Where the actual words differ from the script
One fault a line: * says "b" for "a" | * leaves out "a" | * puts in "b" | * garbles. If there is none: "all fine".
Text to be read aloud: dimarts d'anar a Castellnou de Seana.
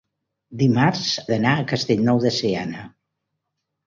all fine